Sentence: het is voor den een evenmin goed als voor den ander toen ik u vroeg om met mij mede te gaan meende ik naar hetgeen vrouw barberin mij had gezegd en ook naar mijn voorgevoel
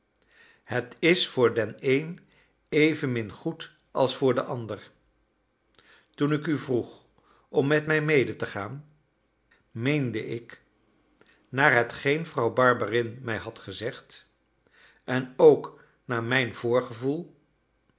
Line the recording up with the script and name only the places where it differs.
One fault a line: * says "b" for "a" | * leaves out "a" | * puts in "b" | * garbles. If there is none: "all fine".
all fine